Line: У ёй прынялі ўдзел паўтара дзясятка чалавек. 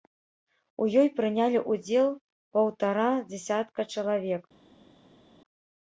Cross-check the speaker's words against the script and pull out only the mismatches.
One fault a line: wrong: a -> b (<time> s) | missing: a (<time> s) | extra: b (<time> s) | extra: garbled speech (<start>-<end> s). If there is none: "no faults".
no faults